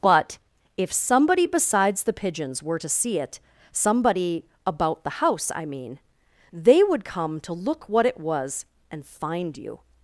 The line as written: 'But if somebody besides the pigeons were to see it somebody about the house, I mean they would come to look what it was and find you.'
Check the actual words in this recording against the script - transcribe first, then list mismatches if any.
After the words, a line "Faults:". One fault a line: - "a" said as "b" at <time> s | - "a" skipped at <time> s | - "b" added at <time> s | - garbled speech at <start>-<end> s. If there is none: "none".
'But if somebody besides the pigeons were to see it somebody about the house, I mean they would come to look what it was and find you.'
Faults:
none